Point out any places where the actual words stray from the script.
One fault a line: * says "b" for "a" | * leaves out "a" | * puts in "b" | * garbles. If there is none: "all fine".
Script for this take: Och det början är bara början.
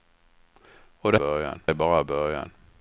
all fine